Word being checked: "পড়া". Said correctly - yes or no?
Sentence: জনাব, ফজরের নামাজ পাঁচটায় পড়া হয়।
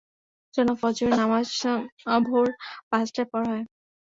yes